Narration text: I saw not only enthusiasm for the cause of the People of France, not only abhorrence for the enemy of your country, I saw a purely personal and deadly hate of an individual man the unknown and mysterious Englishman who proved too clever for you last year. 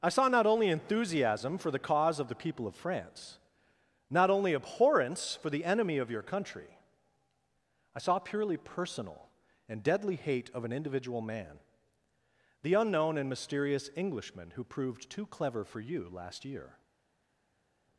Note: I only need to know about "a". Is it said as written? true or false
false